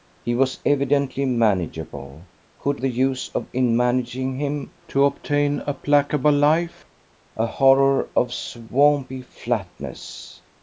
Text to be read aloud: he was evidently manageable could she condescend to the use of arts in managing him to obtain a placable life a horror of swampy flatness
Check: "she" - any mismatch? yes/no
yes